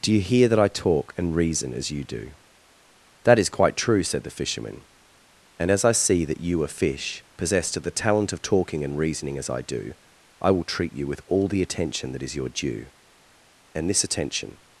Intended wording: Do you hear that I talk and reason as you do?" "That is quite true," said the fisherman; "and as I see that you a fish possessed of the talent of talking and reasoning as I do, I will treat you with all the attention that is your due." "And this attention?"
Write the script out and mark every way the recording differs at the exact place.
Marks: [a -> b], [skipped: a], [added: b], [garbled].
Do you hear that I talk and reason as you do?" "That is quite true," said the fisherman; "and as I see that you a fish possessed of the talent of talking and reasoning as I do, I will treat you with all the attention that is your due." "And this attention?"